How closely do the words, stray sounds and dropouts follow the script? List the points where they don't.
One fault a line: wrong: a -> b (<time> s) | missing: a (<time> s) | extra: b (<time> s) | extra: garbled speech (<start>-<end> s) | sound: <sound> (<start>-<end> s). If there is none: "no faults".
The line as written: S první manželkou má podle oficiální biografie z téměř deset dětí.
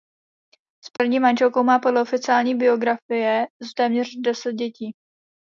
sound: dropout (1.0-1.0 s)